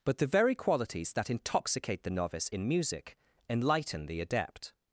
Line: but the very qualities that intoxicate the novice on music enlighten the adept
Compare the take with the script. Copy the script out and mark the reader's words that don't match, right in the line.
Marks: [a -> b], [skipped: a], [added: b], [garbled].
but the very qualities that intoxicate the novice [on -> in] music enlighten the adept